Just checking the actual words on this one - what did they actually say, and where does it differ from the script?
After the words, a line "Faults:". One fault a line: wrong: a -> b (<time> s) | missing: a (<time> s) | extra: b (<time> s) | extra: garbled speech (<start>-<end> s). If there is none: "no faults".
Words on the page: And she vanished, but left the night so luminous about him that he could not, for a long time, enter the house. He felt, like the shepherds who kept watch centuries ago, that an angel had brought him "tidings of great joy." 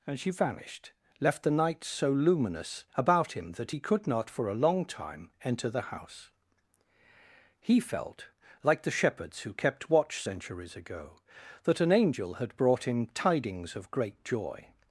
And she vanished, left the night so luminous about him that he could not, for a long time, enter the house. He felt, like the shepherds who kept watch centuries ago, that an angel had brought him "tidings of great joy."
Faults:
missing: but (0.9 s)